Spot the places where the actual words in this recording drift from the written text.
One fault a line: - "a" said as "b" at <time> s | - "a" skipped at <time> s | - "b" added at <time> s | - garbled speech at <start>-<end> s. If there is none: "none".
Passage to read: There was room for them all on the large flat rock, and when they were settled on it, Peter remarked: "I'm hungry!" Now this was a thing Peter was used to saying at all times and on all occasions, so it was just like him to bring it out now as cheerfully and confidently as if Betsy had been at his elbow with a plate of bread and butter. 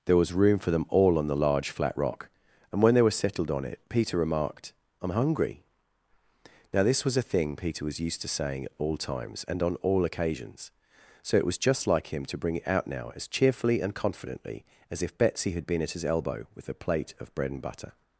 none